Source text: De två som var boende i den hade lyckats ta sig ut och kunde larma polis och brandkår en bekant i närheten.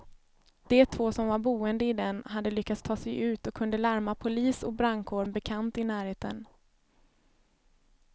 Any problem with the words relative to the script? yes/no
no